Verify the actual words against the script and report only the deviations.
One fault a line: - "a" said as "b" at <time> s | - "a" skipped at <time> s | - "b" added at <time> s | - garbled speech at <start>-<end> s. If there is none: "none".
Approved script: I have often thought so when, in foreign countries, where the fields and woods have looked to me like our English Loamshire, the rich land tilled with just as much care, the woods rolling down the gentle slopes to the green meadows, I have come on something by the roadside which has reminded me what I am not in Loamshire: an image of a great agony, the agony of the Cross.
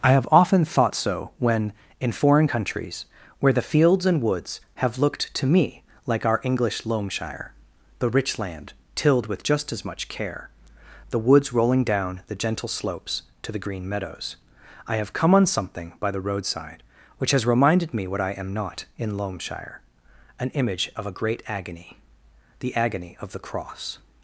none